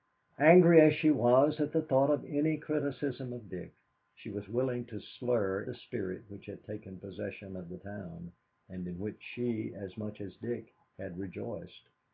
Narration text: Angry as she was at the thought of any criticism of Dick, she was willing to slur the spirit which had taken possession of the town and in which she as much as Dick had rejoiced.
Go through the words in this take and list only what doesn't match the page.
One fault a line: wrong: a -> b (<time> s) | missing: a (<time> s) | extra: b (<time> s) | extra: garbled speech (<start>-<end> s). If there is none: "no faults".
no faults